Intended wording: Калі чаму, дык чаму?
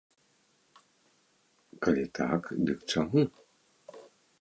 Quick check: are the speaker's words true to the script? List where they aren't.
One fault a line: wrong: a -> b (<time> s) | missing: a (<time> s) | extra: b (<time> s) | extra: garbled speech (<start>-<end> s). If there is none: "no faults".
wrong: чаму -> так (2.2 s)